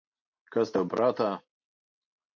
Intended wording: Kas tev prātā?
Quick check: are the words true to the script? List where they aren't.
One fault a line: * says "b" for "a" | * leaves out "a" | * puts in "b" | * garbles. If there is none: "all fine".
all fine